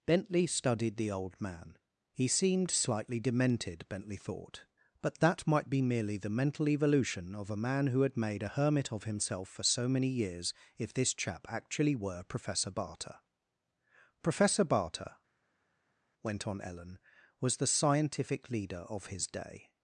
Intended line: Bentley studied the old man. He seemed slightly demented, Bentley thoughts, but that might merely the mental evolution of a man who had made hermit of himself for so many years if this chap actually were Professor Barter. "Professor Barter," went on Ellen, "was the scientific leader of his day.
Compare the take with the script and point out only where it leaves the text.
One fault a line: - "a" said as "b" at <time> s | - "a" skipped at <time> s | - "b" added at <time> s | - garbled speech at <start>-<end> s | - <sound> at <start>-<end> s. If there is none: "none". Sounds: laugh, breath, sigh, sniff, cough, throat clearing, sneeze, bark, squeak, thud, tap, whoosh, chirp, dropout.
- "thoughts" said as "thought" at 4.2 s
- "be" added at 5.7 s
- "a" added at 8.4 s